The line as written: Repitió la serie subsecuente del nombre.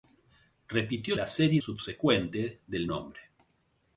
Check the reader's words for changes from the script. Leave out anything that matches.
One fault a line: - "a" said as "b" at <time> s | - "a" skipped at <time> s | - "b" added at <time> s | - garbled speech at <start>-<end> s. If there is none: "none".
none